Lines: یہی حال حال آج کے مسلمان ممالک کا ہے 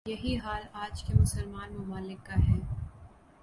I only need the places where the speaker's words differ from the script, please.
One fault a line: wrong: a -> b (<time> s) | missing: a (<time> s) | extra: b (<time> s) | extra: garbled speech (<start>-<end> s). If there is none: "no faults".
missing: حال (0.6 s)